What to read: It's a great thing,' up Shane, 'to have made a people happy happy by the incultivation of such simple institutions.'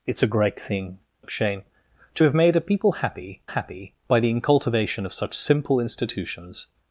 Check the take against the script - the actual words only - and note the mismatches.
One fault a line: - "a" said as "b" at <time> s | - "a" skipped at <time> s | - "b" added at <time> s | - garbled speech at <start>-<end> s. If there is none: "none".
none